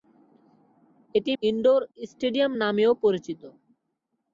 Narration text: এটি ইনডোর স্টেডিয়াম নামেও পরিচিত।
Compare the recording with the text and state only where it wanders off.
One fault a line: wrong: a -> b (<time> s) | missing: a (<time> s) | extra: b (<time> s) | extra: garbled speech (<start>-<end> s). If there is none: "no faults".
no faults